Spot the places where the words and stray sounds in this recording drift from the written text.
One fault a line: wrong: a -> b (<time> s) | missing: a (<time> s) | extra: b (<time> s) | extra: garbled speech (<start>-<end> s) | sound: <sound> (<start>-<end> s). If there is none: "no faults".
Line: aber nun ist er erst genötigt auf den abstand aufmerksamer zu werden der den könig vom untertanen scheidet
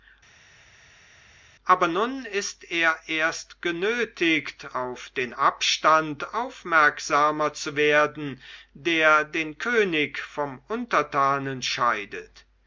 no faults